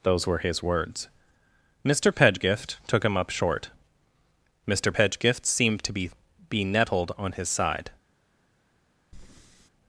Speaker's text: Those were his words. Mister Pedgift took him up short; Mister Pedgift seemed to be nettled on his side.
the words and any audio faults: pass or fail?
fail